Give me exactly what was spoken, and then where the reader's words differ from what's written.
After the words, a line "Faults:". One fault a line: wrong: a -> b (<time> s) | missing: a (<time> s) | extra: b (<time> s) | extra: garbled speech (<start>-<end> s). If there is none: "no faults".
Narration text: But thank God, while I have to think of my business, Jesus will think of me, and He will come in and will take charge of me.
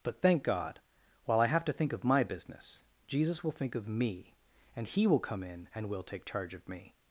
But thank God, while I have to think of my business, Jesus will think of me, and He will come in and will take charge of me.
Faults:
no faults